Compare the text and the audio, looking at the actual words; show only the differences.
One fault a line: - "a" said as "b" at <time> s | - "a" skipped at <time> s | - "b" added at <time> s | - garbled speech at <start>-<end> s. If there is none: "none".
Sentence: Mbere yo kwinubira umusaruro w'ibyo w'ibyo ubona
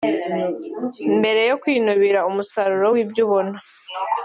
- "w'ibyo" skipped at 3.2 s